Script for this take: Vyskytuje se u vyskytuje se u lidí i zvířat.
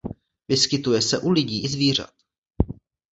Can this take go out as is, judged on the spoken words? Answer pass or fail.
fail